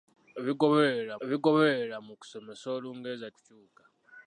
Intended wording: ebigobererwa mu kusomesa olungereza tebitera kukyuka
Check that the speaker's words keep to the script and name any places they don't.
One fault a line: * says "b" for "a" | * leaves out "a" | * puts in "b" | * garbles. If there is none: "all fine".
* puts in "ebigobererwa"
* leaves out "tebitera"